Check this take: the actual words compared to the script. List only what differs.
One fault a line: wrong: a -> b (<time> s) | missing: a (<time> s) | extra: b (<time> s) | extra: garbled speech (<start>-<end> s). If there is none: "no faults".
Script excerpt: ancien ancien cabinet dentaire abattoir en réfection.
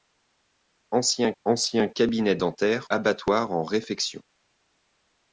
no faults